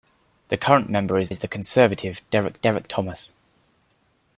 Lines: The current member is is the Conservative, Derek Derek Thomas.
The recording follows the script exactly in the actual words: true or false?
true